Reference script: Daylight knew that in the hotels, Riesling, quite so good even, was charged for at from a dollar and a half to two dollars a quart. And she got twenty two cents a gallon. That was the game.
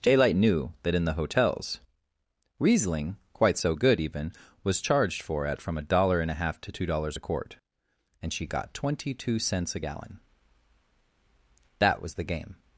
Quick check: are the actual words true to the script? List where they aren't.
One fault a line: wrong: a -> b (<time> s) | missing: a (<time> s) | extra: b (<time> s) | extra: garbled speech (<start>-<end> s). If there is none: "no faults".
no faults